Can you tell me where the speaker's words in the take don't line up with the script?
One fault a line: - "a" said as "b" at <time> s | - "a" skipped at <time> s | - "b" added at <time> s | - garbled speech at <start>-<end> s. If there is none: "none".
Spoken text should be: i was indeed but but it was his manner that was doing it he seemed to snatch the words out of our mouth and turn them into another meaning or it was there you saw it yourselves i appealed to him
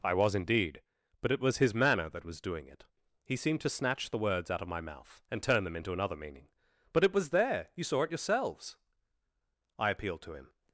- "but" skipped at 1.3 s
- "our" said as "my" at 4.7 s
- "or" said as "but" at 6.9 s